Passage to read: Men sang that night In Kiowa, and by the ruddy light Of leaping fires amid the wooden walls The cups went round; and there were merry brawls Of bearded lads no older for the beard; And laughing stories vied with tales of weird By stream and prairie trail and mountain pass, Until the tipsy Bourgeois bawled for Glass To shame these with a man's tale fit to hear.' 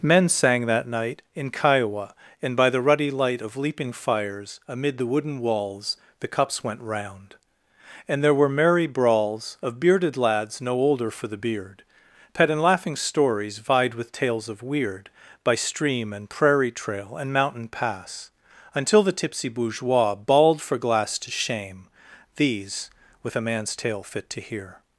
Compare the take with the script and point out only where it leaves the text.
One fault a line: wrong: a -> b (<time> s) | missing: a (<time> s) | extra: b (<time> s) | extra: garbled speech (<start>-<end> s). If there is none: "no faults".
extra: pet (12.3 s)